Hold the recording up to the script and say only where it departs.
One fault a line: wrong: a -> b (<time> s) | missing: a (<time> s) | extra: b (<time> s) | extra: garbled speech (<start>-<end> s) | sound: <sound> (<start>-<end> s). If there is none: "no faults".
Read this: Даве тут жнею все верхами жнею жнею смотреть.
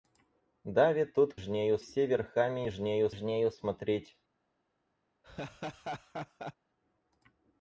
sound: laugh (5.2-6.5 s)